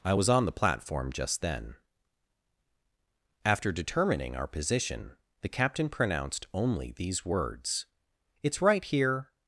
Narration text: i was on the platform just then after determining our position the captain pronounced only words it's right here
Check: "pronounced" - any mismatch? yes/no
no